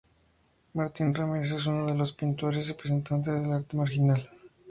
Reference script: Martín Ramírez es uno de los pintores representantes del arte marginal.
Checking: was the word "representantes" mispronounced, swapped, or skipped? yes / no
no